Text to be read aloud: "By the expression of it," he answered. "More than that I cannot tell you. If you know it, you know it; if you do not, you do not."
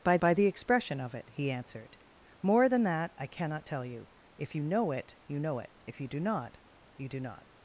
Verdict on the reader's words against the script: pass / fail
fail